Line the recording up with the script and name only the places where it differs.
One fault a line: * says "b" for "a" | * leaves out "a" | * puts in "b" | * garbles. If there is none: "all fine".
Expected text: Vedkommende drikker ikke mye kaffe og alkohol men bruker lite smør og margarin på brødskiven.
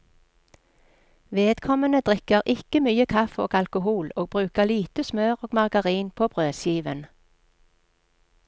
* says "og" for "men"